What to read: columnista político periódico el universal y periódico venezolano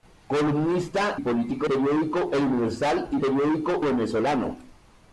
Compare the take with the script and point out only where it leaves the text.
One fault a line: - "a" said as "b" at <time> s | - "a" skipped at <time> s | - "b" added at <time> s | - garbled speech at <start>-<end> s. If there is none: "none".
none